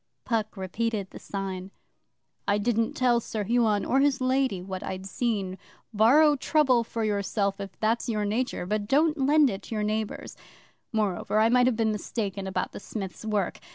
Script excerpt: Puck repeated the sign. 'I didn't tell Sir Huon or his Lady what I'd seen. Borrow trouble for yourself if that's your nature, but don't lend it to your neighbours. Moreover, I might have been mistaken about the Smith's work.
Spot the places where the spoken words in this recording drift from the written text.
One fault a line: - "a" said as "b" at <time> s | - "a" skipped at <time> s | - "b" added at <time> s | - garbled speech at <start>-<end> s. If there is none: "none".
none